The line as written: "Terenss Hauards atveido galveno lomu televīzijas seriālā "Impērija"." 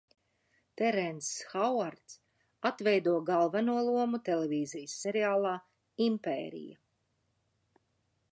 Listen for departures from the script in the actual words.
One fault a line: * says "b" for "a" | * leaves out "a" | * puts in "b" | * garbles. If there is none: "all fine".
all fine